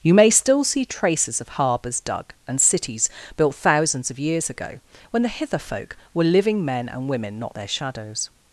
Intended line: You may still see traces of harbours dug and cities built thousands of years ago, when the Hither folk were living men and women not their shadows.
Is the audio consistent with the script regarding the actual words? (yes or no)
yes